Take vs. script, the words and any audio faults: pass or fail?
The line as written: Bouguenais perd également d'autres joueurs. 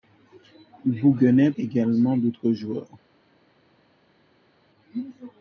fail